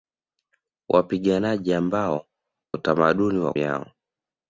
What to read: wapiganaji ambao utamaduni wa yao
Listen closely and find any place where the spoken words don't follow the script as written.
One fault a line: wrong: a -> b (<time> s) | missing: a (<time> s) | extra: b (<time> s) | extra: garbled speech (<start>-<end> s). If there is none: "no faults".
no faults